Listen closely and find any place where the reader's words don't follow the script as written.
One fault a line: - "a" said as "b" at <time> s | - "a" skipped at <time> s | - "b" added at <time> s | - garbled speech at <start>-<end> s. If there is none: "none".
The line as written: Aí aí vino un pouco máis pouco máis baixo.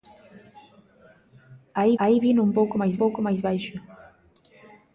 none